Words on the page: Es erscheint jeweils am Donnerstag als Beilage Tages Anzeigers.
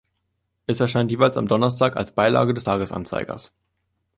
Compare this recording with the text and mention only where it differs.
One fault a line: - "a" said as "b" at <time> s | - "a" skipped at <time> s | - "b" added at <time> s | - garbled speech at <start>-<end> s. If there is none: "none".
- "des" added at 2.5 s